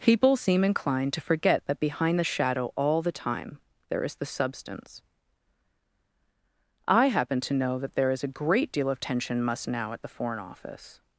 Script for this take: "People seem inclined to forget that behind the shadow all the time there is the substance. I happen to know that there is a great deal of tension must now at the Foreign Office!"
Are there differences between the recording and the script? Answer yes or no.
no